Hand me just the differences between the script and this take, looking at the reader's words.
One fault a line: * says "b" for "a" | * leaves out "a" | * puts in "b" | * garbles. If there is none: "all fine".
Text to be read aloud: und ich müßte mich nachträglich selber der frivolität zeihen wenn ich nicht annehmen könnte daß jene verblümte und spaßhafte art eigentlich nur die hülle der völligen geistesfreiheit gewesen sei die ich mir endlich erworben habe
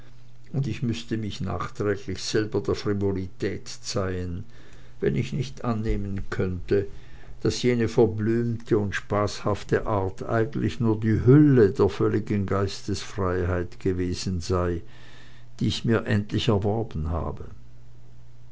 all fine